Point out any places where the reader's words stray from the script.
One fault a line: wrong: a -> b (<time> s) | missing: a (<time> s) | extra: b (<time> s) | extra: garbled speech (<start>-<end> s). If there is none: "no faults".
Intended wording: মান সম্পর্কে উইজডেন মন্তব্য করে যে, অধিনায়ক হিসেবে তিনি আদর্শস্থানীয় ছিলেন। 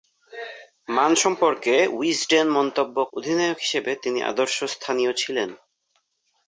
missing: করে যে (3.0 s)